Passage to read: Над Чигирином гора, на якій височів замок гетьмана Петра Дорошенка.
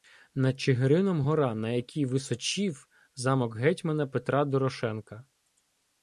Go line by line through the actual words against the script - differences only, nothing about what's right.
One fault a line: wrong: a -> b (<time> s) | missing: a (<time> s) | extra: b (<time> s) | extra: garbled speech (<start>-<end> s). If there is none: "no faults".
no faults